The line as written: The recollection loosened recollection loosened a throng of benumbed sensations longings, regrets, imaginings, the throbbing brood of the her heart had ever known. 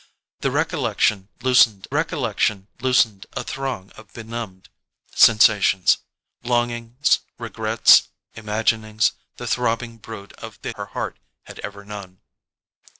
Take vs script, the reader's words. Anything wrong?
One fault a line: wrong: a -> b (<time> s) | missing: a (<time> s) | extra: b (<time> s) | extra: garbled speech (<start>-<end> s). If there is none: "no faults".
no faults